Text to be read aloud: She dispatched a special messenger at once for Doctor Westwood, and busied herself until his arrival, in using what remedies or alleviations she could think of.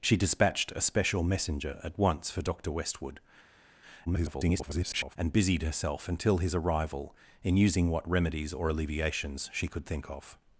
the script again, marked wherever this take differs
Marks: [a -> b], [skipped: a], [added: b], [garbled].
She dispatched a special messenger at once for Doctor Westwood, [garbled] and busied herself until his arrival, in using what remedies or alleviations she could think of.